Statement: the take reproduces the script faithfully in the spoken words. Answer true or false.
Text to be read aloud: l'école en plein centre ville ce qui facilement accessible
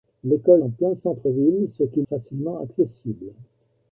true